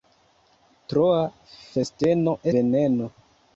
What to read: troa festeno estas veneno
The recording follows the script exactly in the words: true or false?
false